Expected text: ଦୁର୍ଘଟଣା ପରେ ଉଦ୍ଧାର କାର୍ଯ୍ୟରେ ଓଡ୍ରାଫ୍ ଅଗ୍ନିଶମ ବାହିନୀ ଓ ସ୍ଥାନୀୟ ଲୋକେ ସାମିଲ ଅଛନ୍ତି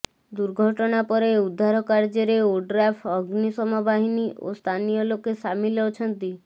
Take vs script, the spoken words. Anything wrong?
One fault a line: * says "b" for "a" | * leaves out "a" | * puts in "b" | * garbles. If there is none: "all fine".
all fine